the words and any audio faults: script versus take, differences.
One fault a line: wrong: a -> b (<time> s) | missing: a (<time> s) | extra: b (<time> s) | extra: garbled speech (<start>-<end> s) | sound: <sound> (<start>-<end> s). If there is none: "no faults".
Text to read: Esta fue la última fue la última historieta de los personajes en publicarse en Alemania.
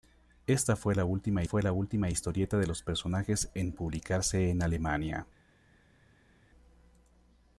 no faults